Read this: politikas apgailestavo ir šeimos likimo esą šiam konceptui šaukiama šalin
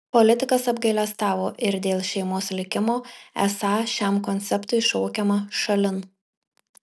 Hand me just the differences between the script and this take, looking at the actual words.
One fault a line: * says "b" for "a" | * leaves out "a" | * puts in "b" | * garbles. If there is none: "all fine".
* puts in "dėl"